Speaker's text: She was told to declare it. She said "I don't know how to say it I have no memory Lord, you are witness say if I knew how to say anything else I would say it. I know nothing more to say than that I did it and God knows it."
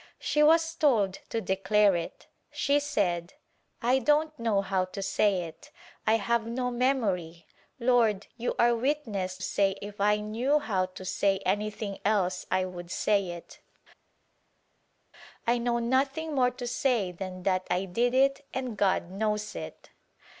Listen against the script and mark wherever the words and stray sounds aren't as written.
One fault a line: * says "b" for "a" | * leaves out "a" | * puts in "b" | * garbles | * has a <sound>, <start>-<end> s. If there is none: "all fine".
all fine